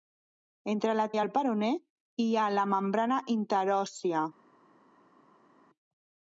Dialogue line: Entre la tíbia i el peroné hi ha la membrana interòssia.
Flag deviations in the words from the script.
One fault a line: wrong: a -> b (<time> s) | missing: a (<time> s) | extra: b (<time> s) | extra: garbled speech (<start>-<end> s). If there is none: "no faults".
missing: tíbia (1.0 s)